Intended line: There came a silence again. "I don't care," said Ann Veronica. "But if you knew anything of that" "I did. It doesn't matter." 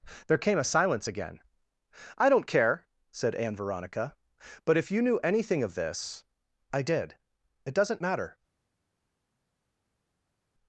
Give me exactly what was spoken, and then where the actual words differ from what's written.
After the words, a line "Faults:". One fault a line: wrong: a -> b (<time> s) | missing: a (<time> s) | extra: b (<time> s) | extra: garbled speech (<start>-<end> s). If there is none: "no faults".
There came a silence again. "I don't care," said Ann Veronica. "But if you knew anything of this" "I did. It doesn't matter."
Faults:
wrong: that -> this (5.7 s)